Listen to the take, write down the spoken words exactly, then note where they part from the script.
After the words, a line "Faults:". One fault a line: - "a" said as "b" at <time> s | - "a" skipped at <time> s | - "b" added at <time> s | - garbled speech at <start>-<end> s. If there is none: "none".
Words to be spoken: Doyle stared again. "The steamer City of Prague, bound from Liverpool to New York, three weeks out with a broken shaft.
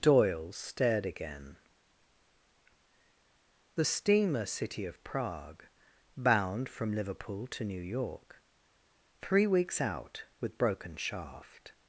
Doyle stared again. "The steamer City of Prague, bound from Liverpool to New York, three weeks out with broken shaft.
Faults:
- "a" skipped at 10.6 s